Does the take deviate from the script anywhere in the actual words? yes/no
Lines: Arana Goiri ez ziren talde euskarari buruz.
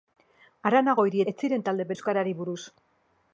no